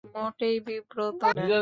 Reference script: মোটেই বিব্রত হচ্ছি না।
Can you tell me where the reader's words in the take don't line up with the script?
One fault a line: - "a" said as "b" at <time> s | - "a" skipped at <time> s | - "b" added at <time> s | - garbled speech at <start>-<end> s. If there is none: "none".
- "হচ্ছি" skipped at 1.2 s